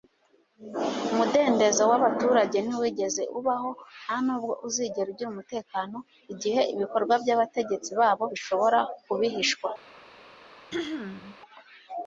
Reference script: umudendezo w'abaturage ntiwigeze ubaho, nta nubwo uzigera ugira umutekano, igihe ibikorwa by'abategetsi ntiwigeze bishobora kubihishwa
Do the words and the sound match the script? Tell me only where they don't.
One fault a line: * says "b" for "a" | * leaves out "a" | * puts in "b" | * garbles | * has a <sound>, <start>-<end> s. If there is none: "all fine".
* says "babo" for "ntiwigeze"
* has a throat clearing, 10.7-11.4 s